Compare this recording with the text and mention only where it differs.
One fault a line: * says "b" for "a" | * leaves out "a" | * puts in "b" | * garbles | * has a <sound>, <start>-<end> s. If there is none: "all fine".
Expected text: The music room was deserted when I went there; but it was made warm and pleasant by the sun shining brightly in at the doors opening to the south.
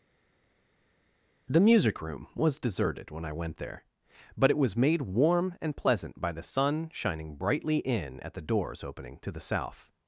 all fine